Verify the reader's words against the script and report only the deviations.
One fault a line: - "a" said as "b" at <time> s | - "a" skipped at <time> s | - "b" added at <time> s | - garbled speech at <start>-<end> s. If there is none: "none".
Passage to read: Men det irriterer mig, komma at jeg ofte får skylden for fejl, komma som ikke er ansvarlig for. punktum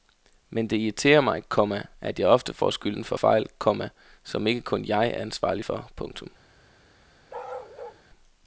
- "kun jeg" added at 4.6 s